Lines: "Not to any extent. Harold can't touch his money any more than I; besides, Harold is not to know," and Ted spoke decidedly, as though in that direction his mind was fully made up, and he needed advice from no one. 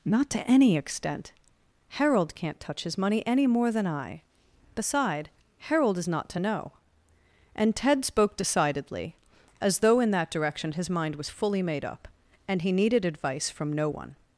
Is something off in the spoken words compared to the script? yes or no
yes